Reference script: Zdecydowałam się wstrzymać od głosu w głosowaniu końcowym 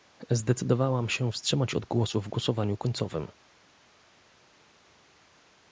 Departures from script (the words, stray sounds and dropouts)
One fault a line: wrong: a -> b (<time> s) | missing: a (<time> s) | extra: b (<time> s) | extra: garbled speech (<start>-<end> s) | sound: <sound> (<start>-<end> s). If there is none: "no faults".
no faults